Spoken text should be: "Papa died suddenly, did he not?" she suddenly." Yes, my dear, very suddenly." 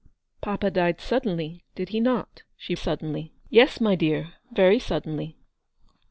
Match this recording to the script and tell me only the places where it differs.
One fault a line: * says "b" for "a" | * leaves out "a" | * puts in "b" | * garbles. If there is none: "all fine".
all fine